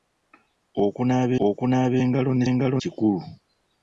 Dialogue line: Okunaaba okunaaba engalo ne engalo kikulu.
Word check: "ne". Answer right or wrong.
right